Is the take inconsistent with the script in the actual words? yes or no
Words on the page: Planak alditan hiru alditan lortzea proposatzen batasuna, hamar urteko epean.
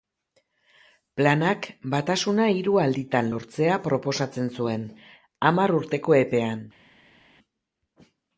yes